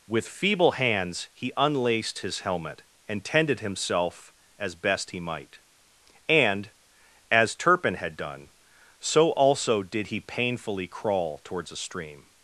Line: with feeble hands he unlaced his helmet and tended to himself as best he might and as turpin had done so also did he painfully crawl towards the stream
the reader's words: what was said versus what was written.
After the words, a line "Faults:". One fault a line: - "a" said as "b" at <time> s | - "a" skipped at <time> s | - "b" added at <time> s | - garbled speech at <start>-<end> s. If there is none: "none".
with feeble hands he unlaced his helmet and tended himself as best he might and as turpin had done so also did he painfully crawl towards a stream
Faults:
- "to" skipped at 3.6 s
- "the" said as "a" at 11.7 s